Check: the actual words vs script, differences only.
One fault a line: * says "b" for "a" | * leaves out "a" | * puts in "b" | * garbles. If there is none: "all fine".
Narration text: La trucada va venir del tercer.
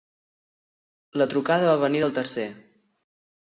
all fine